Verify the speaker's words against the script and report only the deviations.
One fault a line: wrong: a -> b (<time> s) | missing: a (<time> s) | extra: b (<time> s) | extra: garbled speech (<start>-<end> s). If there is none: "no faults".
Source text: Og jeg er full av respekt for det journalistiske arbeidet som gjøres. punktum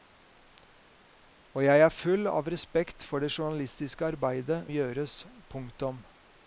missing: som (4.6 s)